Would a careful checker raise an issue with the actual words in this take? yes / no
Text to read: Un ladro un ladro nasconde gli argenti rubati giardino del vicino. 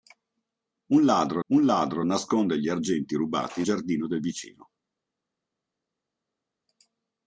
no